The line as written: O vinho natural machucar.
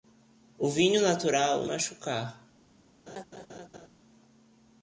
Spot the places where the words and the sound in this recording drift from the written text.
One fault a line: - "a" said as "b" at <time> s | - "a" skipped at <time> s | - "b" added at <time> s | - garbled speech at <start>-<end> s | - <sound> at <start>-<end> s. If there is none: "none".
- laugh at 3.1-3.9 s